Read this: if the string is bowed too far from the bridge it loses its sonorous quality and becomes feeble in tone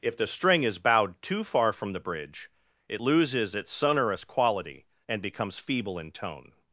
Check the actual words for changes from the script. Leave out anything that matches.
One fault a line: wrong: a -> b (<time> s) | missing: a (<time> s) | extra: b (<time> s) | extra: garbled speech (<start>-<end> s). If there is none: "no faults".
no faults